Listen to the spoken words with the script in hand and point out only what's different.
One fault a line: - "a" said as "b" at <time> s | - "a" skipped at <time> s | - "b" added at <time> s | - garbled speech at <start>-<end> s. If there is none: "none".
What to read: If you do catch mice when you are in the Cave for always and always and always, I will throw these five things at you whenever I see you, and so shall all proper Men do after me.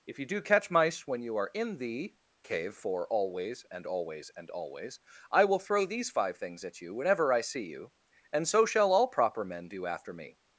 none